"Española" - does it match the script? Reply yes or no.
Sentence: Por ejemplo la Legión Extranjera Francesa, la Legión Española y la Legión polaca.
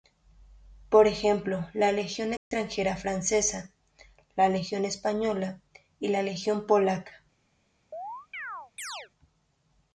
yes